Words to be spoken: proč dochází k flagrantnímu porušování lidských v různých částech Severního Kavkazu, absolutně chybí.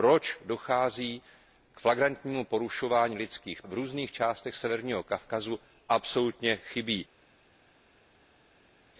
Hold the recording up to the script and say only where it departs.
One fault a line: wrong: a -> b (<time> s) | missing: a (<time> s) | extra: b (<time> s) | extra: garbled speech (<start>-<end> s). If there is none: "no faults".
no faults